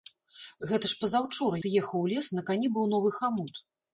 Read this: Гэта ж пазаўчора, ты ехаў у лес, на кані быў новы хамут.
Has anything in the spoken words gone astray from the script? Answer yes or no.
no